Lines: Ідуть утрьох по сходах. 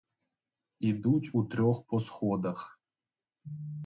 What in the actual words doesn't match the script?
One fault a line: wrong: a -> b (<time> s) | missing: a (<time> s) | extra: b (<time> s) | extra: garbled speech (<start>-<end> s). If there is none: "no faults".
no faults